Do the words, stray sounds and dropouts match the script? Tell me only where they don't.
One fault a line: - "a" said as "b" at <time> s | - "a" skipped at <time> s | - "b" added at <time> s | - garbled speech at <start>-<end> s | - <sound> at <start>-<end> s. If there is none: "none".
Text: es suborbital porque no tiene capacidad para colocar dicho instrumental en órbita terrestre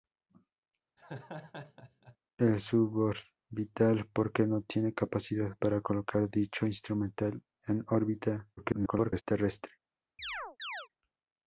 - laugh at 1.0-2.2 s
- garbled speech at 8.6-9.2 s
- chirp at 10.2-10.9 s